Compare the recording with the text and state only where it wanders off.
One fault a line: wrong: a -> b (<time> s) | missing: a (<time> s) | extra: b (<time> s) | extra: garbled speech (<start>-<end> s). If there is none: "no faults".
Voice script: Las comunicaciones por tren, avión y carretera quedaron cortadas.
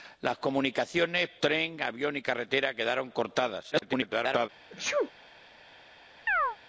missing: por (1.3 s)
extra: garbled speech (3.7-4.5 s)